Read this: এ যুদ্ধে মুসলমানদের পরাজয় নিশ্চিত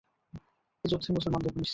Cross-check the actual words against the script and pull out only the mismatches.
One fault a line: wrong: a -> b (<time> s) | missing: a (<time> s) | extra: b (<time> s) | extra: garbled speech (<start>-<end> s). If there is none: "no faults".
missing: পরাজয় (1.5 s)